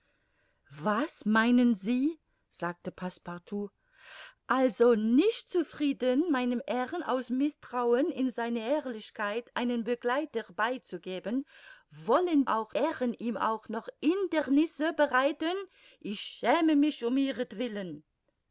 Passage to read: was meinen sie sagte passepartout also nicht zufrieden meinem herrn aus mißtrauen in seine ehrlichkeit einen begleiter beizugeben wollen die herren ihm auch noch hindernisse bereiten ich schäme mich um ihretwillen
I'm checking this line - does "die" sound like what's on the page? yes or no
no